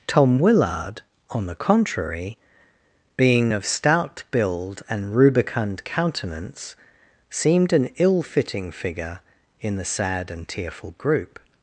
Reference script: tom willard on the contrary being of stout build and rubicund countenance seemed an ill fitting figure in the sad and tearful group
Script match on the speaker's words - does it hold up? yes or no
yes